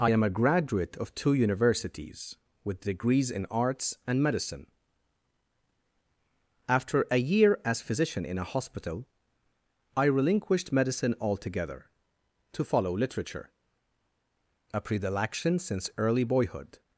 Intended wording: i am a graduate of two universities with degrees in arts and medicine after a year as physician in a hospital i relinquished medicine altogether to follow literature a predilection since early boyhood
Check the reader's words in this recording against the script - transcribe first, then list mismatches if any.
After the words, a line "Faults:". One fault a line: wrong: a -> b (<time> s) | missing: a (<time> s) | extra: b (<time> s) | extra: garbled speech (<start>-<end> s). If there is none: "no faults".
i am a graduate of two universities with degrees in arts and medicine after a year as physician in a hospital i relinquished medicine altogether to follow literature a predilection since early boyhood
Faults:
no faults